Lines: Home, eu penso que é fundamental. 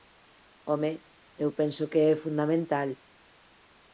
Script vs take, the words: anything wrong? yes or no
no